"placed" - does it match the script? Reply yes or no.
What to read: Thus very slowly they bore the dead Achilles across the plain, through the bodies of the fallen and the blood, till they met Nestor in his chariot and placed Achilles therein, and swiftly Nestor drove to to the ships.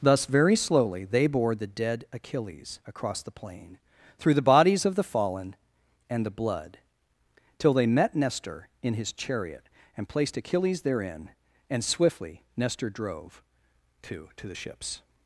yes